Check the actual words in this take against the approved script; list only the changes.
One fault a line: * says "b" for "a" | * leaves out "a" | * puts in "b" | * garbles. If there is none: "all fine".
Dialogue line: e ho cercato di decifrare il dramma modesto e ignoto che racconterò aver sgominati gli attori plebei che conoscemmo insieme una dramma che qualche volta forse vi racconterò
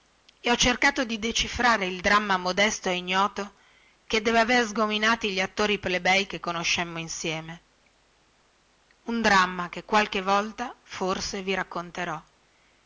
* says "deve" for "racconterò"
* says "un" for "una"